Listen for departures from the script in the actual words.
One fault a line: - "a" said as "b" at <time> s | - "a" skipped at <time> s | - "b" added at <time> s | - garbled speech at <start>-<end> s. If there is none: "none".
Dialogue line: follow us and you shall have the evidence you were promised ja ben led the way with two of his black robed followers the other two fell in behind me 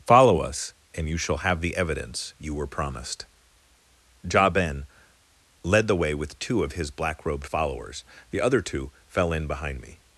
none